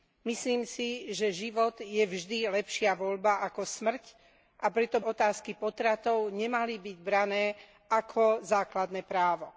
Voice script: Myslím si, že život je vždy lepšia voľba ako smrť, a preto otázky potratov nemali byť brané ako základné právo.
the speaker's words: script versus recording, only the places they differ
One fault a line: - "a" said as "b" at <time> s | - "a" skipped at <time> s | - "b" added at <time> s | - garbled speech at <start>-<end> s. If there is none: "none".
none